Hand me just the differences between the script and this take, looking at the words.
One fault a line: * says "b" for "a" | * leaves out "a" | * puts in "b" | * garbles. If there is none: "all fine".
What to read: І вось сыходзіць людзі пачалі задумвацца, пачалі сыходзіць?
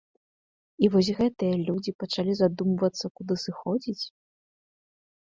* says "гэтыя" for "сыходзіць"
* says "куды" for "пачалі"